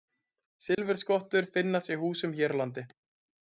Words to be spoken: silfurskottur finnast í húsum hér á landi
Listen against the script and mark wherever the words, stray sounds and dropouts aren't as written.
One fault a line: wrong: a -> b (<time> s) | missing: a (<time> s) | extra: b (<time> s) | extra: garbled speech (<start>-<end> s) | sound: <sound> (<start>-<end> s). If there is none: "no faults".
sound: dropout (0.7-0.8 s)